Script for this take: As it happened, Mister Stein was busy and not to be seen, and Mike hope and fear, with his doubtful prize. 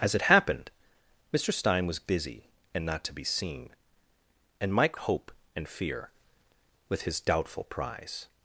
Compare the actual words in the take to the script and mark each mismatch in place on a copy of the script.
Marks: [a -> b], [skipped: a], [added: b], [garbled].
As it happened, Mister Stein was busy and not to be seen, and Mike hope and fear, with his doubtful prize.